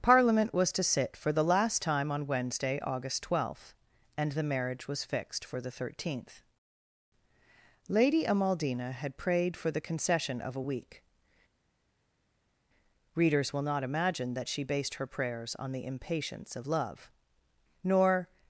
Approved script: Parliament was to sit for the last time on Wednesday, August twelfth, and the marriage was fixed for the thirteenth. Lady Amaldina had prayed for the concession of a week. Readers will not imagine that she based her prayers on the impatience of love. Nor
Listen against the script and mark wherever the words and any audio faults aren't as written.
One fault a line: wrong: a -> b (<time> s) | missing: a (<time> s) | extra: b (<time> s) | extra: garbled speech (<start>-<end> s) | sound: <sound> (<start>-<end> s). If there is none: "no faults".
no faults